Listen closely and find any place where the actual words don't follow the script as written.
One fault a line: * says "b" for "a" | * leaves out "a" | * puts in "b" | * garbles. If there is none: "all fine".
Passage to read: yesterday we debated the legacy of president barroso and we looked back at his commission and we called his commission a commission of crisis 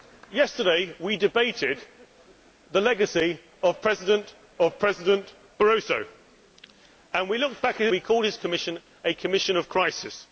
* puts in "of president"
* leaves out "his commission and"